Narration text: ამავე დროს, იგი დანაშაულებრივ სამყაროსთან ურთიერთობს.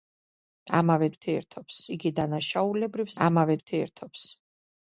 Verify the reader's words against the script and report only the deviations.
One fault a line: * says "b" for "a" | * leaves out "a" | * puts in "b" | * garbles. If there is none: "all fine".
* says "ურთიერთობს" for "დროს"
* says "ამავე" for "სამყაროსთან"